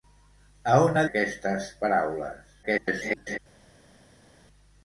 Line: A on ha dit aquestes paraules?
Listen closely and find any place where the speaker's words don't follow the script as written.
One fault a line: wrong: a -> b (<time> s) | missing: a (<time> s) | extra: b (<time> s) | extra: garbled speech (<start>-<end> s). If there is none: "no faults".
missing: dit (1.0 s)
extra: garbled speech (2.6-3.4 s)